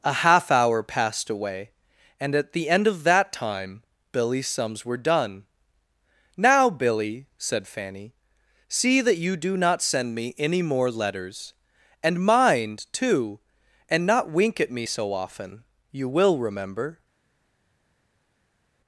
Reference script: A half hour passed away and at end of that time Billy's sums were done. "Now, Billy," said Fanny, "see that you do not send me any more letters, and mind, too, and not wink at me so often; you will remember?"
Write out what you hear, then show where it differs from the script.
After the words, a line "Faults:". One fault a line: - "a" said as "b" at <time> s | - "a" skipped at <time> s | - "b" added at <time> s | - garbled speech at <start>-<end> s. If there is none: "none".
A half hour passed away and at the end of that time Billy's sums were done. "Now, Billy," said Fanny, "see that you do not send me any more letters, and mind, too, and not wink at me so often; you will remember?"
Faults:
- "the" added at 2.5 s